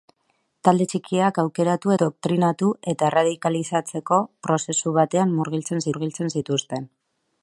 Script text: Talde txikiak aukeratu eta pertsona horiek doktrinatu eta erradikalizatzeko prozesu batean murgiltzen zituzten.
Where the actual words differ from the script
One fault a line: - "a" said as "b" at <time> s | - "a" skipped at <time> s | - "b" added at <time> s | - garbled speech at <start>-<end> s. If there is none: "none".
- "eta pertsona horiek" skipped at 1.9 s
- "murgiltzen" added at 5.9 s